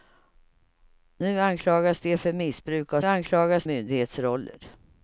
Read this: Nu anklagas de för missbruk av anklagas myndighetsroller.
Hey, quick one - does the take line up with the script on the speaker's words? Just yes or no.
yes